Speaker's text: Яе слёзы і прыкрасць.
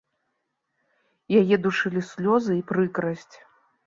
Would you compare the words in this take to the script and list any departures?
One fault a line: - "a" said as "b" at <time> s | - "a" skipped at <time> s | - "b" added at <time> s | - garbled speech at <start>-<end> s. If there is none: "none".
- "душылі" added at 1.6 s